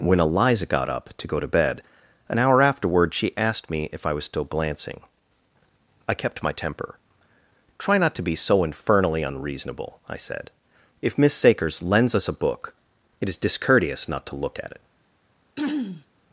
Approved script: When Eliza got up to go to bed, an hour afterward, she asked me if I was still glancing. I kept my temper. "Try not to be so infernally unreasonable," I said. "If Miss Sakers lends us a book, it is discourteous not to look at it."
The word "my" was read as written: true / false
true